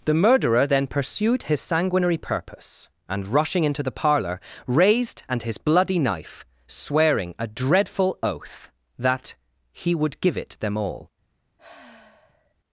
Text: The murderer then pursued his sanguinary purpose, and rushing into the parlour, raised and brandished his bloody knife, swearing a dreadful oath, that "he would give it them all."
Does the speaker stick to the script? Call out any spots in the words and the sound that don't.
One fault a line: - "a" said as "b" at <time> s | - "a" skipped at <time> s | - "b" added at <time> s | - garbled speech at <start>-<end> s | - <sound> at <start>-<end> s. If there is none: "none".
- "brandished" skipped at 5.4 s
- sigh at 11.6-12.6 s